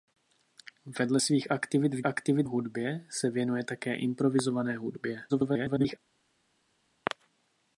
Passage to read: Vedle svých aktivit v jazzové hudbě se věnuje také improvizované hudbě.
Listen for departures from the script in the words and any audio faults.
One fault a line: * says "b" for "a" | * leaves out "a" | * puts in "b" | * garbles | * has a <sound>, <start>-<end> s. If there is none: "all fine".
* says "aktivit" for "jazzové"
* garbles